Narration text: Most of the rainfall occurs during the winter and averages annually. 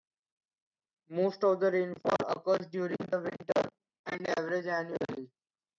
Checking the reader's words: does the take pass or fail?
pass